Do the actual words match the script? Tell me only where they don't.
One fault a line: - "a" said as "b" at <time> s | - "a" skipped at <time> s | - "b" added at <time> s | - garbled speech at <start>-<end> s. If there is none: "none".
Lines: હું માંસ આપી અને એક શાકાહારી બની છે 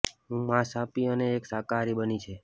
none